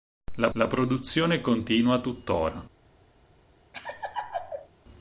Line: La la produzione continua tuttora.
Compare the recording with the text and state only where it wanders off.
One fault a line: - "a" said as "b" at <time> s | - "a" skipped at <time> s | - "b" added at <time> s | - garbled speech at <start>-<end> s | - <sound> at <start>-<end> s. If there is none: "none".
- laugh at 3.7-4.7 s